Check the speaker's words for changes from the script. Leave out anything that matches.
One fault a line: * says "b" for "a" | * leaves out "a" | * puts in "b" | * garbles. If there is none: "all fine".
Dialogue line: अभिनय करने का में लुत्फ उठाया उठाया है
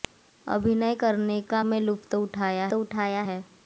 all fine